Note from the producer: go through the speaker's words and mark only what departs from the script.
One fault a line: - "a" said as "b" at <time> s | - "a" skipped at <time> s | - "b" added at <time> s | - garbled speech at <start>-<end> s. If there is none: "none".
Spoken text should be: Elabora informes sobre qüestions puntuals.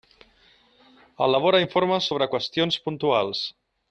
none